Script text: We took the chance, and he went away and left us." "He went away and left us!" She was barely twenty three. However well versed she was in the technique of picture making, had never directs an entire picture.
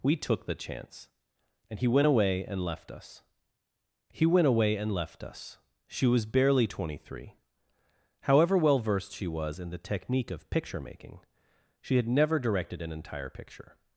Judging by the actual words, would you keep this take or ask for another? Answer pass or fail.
fail